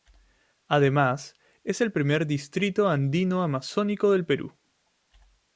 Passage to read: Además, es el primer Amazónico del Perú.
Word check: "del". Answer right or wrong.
right